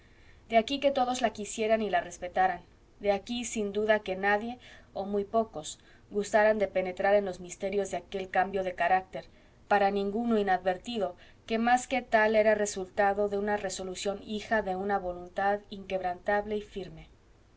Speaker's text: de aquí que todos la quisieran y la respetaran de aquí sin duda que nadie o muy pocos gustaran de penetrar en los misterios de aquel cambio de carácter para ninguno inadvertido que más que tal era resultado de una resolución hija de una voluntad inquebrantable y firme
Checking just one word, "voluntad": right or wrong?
right